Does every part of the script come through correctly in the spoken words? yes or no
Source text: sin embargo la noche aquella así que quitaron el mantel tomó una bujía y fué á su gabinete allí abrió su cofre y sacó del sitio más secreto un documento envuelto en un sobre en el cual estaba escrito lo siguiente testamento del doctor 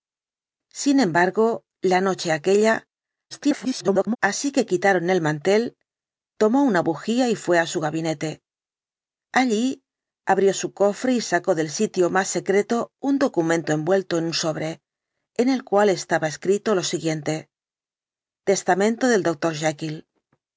no